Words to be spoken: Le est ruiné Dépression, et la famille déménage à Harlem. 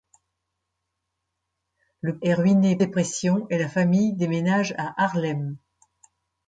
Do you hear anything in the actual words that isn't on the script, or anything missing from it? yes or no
no